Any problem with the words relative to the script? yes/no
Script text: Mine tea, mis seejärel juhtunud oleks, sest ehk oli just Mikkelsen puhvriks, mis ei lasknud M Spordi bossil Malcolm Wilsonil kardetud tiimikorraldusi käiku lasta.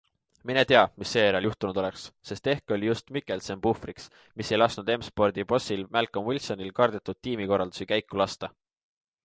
no